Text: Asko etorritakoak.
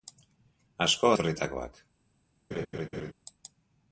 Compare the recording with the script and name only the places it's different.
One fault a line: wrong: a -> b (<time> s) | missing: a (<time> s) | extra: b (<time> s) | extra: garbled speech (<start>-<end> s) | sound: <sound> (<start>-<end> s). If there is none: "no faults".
sound: laugh (2.5-3.1 s)